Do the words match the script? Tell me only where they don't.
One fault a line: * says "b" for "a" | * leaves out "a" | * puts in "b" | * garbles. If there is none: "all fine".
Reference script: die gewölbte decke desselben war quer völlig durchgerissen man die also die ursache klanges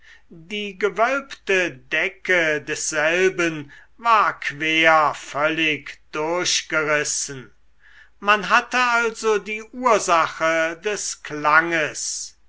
* says "hatte" for "die"
* puts in "des"